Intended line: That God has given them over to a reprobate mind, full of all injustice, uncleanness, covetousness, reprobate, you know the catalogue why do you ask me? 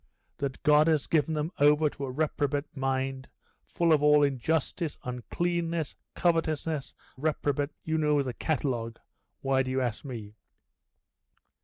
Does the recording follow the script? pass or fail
pass